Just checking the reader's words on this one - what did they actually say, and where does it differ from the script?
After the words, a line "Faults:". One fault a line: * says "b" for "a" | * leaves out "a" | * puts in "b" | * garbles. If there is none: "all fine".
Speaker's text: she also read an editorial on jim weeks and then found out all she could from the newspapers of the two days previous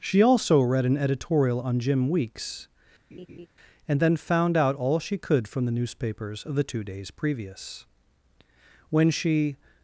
she also read an editorial on jim weeks and then found out all she could from the newspapers of the two days previous when she
Faults:
* puts in "when she"